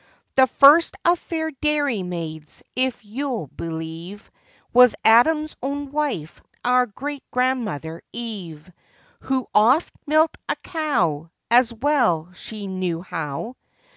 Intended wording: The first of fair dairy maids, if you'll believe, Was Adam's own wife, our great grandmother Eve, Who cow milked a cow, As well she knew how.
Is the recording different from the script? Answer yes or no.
yes